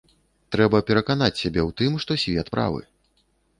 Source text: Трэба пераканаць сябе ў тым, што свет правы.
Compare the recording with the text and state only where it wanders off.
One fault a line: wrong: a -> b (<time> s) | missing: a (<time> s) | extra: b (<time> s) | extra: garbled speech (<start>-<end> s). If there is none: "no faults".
no faults